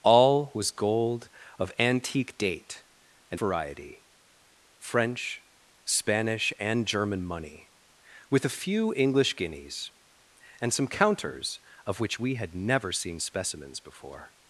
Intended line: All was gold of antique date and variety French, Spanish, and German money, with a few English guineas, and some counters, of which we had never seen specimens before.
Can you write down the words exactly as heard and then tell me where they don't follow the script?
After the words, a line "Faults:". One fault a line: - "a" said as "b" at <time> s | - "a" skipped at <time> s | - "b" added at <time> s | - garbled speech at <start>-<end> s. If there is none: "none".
All was gold of antique date and variety French, Spanish, and German money, with a few English guineas, and some counters, of which we had never seen specimens before.
Faults:
none